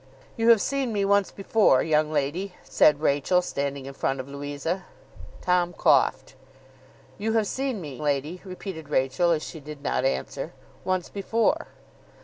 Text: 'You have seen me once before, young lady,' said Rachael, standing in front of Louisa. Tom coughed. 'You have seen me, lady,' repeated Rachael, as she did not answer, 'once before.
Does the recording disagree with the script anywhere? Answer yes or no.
no